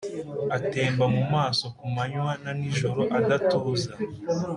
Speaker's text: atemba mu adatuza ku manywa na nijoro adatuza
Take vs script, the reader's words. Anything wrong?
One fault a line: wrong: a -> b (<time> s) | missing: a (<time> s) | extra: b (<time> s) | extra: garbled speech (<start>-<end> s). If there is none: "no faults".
wrong: adatuza -> maso (1.3 s)